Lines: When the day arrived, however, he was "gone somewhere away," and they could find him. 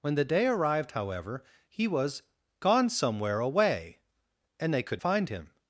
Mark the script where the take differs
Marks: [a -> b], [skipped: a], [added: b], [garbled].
When the day arrived, however, he was "gone somewhere away," and they could find him.